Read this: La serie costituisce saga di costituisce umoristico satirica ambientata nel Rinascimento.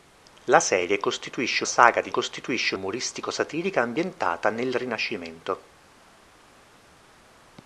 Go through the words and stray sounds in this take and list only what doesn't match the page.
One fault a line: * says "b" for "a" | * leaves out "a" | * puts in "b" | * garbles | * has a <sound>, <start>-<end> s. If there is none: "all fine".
all fine